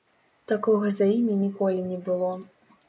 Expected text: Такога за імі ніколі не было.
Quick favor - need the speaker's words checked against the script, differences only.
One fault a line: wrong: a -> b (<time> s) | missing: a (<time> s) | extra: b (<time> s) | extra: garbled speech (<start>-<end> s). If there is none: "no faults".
no faults